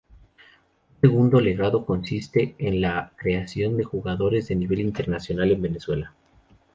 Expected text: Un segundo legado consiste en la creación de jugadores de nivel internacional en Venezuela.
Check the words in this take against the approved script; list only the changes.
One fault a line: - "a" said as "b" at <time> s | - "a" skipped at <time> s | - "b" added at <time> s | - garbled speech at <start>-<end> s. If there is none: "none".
none